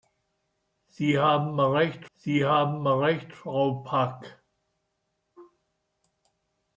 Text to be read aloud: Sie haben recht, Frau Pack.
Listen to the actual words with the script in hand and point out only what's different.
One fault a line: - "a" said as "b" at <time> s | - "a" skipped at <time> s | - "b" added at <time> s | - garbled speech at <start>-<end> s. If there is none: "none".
- "sie haben recht" added at 2.1 s